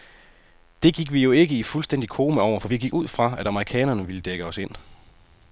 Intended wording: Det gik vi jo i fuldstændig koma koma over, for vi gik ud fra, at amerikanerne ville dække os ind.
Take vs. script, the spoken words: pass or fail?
fail